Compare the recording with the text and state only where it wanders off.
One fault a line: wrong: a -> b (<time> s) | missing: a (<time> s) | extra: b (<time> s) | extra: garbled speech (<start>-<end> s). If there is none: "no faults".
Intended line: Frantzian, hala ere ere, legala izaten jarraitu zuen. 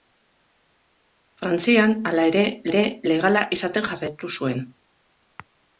no faults